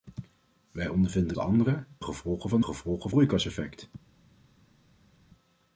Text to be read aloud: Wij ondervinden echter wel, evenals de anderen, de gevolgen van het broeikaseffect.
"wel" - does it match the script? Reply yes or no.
no